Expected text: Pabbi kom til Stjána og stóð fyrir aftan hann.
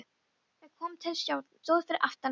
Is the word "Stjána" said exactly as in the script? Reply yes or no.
no